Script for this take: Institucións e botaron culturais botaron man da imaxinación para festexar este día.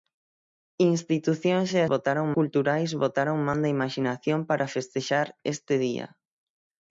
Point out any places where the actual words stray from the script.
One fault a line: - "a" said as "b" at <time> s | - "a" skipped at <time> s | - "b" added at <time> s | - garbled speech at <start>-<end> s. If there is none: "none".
none